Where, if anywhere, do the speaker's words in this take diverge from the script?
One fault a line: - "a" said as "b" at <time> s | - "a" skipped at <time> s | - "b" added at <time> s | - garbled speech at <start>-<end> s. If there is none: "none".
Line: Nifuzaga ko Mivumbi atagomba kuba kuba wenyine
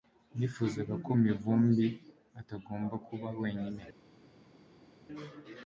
- "kuba" skipped at 3.3 s